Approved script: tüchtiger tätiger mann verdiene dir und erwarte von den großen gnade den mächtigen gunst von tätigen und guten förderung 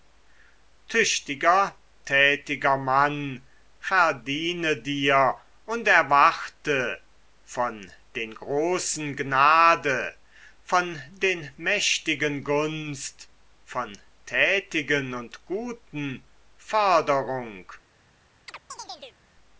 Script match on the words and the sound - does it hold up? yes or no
no